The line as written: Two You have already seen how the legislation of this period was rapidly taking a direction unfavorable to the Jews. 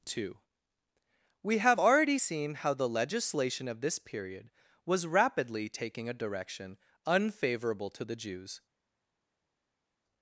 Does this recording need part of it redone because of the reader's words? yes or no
yes